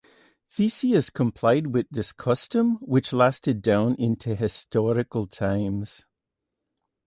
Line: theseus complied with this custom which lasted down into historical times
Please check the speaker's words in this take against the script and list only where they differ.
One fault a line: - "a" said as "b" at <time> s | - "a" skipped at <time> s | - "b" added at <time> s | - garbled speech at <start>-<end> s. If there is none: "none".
none